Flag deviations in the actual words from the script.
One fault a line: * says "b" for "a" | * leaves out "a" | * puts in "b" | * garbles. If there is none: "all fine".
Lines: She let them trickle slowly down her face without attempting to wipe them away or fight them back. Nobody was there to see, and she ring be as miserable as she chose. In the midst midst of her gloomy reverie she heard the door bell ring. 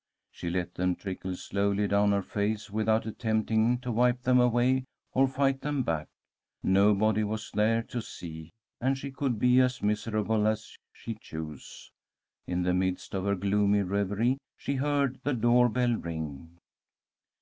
* says "could" for "ring"
* leaves out "midst"